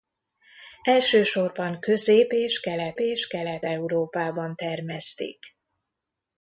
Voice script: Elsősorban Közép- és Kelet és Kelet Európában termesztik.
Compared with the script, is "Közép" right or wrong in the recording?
right